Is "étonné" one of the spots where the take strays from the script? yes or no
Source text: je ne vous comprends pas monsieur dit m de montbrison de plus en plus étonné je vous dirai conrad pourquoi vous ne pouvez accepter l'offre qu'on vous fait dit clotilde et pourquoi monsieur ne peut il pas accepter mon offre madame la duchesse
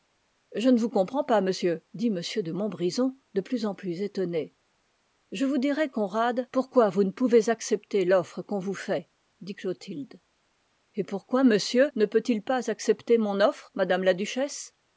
no